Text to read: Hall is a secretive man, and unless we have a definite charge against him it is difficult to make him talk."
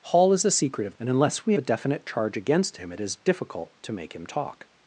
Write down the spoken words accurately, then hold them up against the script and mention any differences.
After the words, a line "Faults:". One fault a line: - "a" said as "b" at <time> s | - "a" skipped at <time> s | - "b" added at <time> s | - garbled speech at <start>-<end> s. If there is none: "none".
Hall is a secretive and unless we a definite charge against him it is difficult to make him talk."
Faults:
- "man" skipped at 1.0 s
- "have" skipped at 1.5 s